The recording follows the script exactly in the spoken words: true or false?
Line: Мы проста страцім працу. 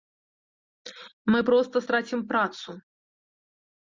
true